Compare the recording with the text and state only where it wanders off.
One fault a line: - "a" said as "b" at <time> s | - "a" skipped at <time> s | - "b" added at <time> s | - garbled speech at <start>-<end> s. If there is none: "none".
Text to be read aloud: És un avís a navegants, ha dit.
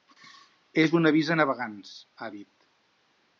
none